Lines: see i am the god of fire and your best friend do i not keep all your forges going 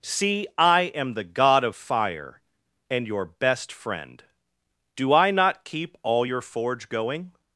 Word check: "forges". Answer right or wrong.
wrong